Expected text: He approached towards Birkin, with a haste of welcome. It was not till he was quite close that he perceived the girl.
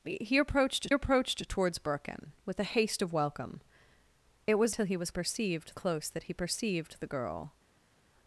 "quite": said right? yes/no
no